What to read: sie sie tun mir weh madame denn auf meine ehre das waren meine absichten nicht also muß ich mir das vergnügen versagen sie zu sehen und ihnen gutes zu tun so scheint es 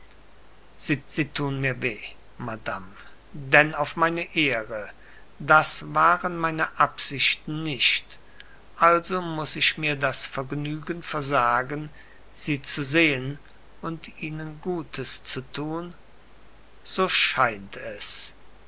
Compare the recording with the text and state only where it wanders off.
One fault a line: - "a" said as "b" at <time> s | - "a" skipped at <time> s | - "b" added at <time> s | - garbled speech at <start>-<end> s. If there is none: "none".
none